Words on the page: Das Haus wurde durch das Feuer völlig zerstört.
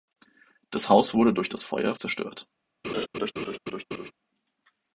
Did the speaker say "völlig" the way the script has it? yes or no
no